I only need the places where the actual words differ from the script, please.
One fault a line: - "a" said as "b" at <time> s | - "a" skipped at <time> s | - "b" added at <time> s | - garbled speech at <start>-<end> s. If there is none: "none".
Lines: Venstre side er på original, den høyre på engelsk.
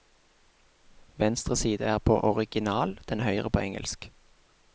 none